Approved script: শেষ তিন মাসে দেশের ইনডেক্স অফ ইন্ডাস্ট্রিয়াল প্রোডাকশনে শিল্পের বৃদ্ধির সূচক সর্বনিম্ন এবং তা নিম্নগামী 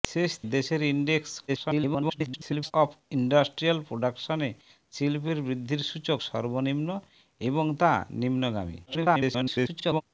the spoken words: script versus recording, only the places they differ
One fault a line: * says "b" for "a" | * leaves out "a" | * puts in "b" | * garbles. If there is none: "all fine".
* leaves out "তিন মাসে"
* garbles
* garbles